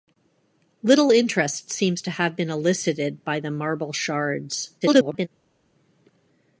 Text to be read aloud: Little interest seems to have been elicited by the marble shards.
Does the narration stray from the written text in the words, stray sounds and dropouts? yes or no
yes